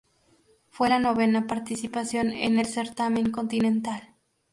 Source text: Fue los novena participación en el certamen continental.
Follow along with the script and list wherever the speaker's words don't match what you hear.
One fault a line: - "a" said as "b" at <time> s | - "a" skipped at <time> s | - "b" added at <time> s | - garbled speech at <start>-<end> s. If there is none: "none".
- "los" said as "la" at 0.8 s